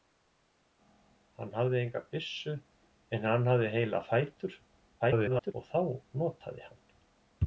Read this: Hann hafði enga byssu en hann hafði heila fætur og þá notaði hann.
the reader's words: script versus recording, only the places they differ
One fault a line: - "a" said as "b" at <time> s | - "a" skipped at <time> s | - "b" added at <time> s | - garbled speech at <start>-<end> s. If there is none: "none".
- garbled speech at 5.0-5.5 s